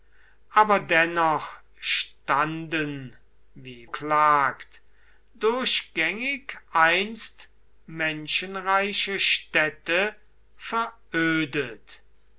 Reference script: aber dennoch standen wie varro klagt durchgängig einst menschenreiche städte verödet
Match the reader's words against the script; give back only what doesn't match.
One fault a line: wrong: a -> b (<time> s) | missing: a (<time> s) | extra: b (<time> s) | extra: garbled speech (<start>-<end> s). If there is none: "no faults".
missing: varro (3.9 s)